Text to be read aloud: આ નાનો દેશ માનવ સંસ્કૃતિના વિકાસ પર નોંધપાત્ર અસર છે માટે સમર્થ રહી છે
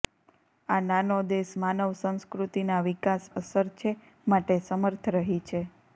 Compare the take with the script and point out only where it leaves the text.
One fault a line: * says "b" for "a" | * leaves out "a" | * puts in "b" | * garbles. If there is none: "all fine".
* leaves out "પર નોંધપાત્ર"